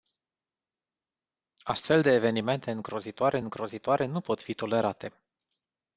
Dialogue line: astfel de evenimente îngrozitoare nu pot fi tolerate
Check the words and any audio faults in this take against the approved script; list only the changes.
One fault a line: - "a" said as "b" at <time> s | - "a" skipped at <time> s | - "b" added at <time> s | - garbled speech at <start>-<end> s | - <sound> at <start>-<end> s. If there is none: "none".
- "îngrozitoare" added at 3.4 s